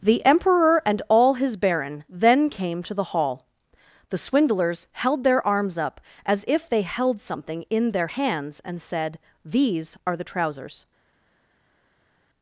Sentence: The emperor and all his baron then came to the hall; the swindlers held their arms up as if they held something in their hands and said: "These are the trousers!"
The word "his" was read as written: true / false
true